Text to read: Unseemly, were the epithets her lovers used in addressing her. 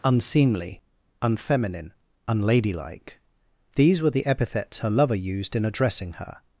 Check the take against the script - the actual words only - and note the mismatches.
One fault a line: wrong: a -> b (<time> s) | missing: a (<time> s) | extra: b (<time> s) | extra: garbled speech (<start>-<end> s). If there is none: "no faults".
extra: unfeminine unladylike These (1.2 s)
wrong: lovers -> lover (4.9 s)